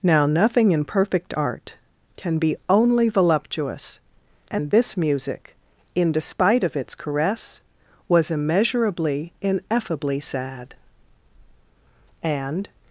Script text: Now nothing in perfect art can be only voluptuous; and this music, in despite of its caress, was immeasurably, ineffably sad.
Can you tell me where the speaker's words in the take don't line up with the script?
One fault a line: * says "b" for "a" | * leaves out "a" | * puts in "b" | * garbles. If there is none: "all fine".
* puts in "And"